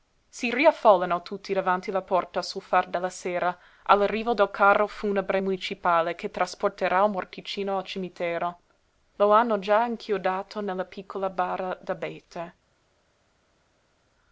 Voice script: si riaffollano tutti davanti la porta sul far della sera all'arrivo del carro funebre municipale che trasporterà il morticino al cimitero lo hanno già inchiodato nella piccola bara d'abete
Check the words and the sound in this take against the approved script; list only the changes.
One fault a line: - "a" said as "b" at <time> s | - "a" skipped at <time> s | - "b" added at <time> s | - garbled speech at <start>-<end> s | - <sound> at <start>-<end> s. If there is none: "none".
none